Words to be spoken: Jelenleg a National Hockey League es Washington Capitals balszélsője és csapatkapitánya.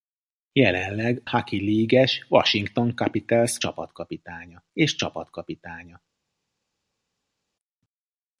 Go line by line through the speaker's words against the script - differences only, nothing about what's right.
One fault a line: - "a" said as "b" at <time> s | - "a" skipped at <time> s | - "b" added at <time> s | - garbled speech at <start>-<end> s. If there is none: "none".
- "a National" skipped at 1.2 s
- "balszélsője" said as "csapatkapitánya" at 3.6 s